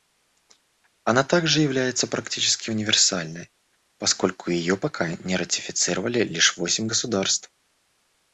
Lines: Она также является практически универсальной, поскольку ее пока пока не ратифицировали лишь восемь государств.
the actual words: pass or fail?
fail